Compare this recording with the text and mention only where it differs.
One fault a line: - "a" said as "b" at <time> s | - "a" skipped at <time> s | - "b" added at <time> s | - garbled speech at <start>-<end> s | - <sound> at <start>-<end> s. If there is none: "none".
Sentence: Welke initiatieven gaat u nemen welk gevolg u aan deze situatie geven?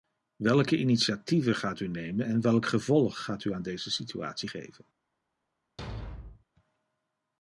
- "en" added at 2.2 s
- "gaat" added at 3.2 s
- thud at 5.8-6.4 s